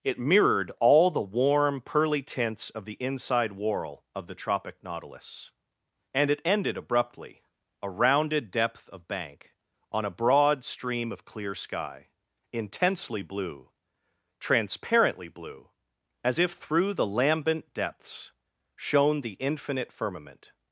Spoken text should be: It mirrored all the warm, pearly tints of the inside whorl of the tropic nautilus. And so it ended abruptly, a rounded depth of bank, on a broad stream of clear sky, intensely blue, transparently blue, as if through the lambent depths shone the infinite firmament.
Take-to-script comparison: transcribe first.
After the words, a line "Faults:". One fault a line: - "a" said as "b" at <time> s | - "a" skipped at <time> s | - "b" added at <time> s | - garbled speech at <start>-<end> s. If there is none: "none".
It mirrored all the warm, pearly tints of the inside whorl of the tropic nautilus. And it ended abruptly, a rounded depth of bank, on a broad stream of clear sky, intensely blue, transparently blue, as if through the lambent depths shone the infinite firmament.
Faults:
- "so" skipped at 6.3 s